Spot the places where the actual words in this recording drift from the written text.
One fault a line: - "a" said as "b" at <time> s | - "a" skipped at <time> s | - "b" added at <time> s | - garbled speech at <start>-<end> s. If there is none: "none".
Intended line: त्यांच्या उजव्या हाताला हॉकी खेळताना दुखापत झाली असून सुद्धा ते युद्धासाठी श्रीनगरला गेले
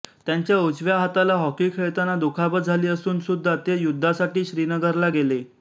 none